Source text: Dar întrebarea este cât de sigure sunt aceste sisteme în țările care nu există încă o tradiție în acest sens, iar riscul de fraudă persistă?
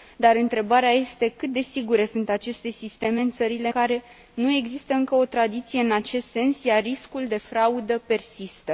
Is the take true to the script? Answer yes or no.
yes